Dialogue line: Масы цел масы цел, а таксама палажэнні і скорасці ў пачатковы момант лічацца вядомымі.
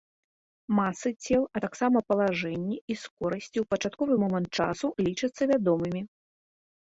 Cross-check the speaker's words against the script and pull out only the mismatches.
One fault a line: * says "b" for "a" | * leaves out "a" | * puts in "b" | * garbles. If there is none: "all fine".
* leaves out "масы цел"
* puts in "часу"